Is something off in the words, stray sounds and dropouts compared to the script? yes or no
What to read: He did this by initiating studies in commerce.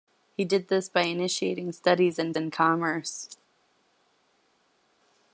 yes